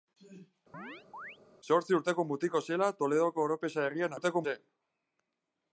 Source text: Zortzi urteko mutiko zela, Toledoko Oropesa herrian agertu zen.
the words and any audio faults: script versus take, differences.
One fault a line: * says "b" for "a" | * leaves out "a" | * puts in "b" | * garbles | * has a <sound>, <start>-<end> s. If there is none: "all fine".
* has a chirp, 0.7-1.4 s
* says "urteko" for "agertu"